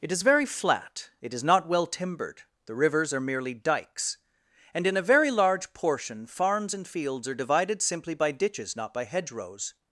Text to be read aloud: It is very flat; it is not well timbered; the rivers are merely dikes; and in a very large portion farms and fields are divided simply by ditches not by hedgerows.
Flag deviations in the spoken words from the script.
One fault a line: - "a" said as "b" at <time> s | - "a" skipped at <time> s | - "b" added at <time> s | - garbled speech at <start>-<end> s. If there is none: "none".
none